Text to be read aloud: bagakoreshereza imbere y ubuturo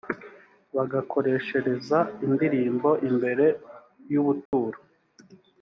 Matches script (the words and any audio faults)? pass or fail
fail